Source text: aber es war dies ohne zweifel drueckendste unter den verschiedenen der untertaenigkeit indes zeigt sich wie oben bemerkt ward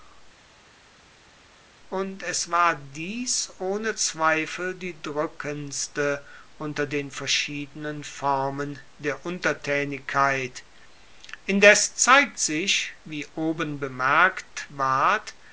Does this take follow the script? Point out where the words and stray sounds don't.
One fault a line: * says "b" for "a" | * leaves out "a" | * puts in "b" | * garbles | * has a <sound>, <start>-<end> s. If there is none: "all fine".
* says "und" for "aber"
* puts in "die"
* puts in "formen"